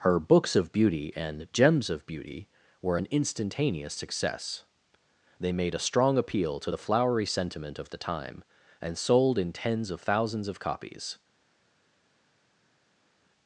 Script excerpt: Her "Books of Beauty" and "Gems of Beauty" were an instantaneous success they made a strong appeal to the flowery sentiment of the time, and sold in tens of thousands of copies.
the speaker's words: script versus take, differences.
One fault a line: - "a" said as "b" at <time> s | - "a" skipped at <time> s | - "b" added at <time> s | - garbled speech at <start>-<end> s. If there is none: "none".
none